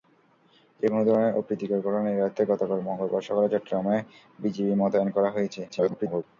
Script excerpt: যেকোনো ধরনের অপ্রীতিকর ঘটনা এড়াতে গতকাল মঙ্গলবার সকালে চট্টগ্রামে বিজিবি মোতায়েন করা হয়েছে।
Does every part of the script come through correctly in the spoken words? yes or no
no